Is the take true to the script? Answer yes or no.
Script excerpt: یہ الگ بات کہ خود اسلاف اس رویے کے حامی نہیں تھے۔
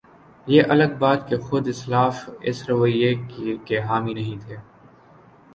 yes